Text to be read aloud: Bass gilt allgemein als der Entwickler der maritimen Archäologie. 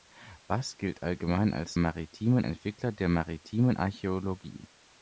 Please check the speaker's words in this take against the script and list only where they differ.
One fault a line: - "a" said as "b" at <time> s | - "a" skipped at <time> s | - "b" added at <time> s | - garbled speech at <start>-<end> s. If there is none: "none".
- "der" said as "maritimen" at 1.8 s